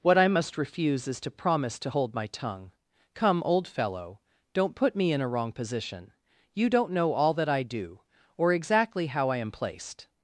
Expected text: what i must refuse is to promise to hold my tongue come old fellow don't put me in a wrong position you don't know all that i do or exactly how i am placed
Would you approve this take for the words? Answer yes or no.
yes